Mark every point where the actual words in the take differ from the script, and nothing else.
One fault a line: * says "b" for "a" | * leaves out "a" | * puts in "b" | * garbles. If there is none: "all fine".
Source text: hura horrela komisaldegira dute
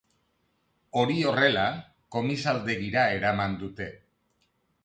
* says "hori" for "hura"
* puts in "eraman"